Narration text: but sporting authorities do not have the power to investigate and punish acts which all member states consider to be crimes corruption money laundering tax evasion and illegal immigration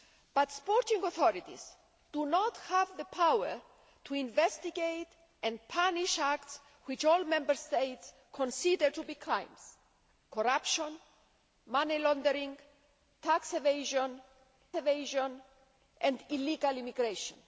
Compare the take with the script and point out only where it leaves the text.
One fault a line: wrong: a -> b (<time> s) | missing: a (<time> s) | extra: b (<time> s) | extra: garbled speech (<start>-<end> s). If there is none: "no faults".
extra: evasion (14.8 s)